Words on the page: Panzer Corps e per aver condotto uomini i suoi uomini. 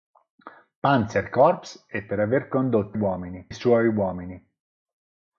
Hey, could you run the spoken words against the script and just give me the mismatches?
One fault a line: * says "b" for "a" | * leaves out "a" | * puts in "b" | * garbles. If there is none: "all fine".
all fine